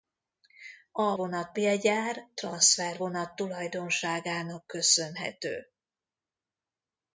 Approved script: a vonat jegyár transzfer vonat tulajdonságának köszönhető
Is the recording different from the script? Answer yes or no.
no